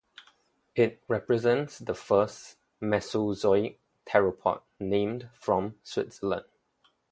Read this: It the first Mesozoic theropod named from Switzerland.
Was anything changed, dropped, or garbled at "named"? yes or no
no